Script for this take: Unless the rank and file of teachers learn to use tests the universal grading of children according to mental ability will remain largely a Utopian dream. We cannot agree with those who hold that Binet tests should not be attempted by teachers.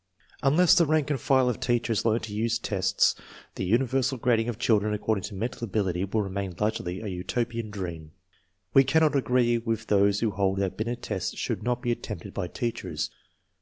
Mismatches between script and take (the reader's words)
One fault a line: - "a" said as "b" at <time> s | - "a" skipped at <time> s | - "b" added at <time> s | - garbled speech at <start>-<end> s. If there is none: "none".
none